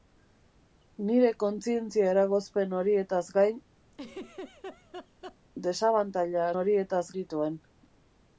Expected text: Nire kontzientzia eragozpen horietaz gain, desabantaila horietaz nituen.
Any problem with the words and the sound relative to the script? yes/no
yes